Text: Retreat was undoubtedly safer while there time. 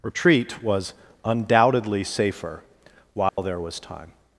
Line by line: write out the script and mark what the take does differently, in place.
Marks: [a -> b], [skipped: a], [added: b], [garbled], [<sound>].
Retreat was undoubtedly safer while [dropout] there [added: was] time.